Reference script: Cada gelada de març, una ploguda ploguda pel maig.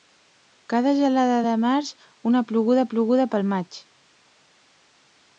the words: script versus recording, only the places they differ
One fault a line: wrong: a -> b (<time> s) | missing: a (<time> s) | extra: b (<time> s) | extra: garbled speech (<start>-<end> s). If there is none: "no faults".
no faults